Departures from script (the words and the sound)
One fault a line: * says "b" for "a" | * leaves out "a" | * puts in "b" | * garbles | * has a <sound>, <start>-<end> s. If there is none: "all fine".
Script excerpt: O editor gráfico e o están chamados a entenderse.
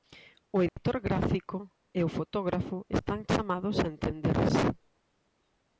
* has a dropout, 0.7-0.8 s
* puts in "fotógrafo"